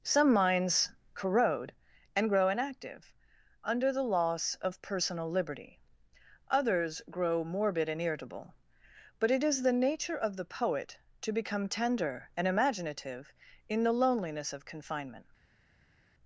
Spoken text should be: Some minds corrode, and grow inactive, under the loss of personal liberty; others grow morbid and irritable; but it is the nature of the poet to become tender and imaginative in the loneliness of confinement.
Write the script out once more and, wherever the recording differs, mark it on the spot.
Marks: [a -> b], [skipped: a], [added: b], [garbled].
Some minds corrode, and grow inactive, under the loss of personal liberty; others grow morbid and irritable; but it is the nature of the poet to become tender and imaginative in the loneliness of confinement.